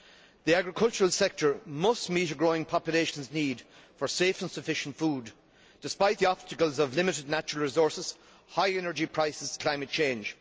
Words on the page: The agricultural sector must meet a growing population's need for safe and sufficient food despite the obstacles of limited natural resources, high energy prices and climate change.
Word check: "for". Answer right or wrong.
right